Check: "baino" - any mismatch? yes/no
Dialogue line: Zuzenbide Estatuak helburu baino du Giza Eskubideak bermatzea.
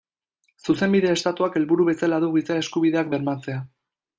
yes